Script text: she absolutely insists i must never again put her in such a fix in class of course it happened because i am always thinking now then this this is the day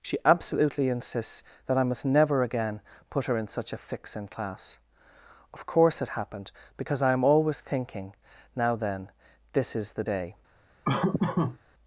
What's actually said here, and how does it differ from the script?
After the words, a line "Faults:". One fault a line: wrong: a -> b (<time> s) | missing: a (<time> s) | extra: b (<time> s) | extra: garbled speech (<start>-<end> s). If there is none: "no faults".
she absolutely insists that i must never again put her in such a fix in class of course it happened because i am always thinking now then this is the day
Faults:
extra: that (1.7 s)
missing: this (9.8 s)